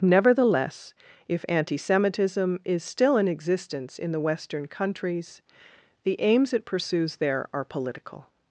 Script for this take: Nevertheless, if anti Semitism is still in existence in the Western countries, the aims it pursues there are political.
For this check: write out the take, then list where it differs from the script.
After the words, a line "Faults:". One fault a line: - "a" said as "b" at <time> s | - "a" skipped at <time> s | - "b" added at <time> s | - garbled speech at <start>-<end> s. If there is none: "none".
Nevertheless, if anti Semitism is still in existence in the Western countries, the aims it pursues there are political.
Faults:
none